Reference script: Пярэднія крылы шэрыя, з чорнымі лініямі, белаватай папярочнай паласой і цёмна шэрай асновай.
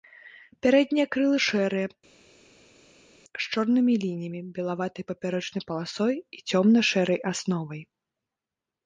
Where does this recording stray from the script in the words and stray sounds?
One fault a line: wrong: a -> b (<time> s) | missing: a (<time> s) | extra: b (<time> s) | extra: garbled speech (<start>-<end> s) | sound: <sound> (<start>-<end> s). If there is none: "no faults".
no faults